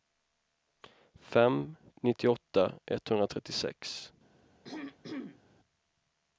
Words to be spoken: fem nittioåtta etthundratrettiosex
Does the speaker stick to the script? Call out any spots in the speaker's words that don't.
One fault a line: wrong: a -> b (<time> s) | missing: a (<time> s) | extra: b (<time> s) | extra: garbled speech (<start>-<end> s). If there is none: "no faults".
no faults